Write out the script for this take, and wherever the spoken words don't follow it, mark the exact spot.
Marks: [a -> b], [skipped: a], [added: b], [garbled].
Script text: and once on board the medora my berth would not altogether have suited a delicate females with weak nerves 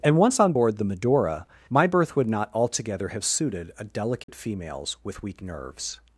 and once on board the medora my berth would not altogether have suited a delicate females with weak nerves